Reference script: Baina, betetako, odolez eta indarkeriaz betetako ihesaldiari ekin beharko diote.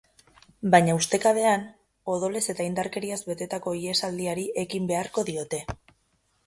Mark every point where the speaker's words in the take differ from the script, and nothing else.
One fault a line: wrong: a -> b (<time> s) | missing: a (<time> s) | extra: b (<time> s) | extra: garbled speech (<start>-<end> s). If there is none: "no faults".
wrong: betetako -> ustekabean (1.0 s)